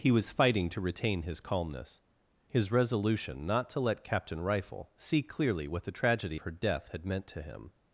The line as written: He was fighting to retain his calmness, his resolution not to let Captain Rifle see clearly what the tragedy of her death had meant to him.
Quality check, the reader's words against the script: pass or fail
fail